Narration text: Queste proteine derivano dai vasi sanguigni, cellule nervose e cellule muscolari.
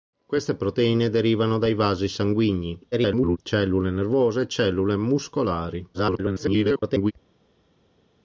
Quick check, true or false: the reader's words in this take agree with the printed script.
false